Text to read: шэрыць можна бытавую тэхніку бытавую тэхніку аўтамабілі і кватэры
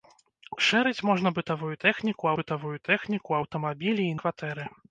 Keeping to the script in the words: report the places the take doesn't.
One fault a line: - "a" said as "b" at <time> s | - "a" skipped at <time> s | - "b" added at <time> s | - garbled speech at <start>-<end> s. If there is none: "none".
none